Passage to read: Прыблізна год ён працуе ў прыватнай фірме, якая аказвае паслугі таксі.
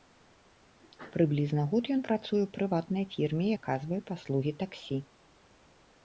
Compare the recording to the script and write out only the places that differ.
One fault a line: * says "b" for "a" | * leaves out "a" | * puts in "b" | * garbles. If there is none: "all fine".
* leaves out "якая"